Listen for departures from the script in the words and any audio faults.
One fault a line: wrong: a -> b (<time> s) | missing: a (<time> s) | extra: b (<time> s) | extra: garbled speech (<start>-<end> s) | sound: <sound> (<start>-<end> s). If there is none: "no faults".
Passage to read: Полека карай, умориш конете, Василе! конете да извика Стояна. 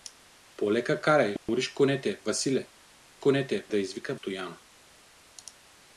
sound: dropout (1.4-1.5 s)